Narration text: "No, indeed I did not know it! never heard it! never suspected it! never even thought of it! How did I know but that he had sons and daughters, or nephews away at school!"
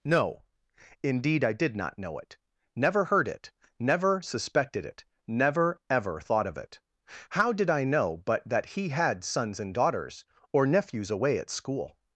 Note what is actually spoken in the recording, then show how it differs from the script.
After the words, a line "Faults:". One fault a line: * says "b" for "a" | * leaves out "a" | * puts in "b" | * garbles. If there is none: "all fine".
"No, indeed I did not know it! never heard it! never suspected it! never ever thought of it! How did I know but that he had sons and daughters, or nephews away at school!"
Faults:
* says "ever" for "even"